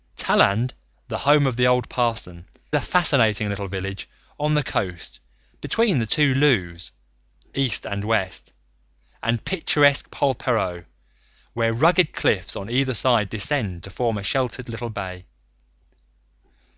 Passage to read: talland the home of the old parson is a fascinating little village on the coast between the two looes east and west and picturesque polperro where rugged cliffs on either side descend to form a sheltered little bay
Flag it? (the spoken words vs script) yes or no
yes